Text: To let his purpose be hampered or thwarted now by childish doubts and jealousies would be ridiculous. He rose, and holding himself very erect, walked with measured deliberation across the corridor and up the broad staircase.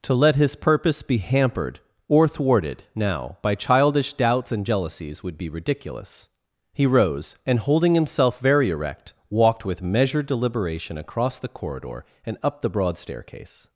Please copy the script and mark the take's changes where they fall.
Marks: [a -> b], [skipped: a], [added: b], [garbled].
To let his purpose be hampered or thwarted now by childish doubts and jealousies would be ridiculous. He rose, and holding himself very erect, walked with measured deliberation across the corridor and up the broad staircase.